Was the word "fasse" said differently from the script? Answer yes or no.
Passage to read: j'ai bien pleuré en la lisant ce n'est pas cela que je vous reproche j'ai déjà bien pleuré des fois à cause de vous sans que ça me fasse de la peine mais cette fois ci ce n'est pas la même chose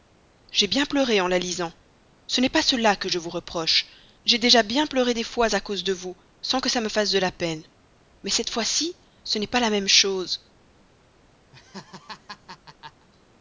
no